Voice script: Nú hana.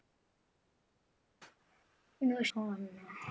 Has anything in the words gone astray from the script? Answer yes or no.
no